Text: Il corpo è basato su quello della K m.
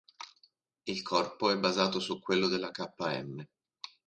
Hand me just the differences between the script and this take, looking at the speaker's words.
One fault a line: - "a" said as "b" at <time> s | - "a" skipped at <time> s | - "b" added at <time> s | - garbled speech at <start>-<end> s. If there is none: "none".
none